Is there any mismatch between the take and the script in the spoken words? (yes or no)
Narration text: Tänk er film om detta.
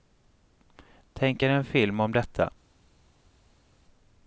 yes